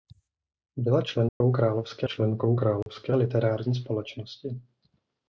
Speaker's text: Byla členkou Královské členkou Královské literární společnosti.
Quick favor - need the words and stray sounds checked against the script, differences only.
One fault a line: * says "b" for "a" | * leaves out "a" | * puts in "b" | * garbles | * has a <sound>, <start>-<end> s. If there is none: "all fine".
* has a dropout, 1.3-1.4 s
* has a dropout, 2.8-2.9 s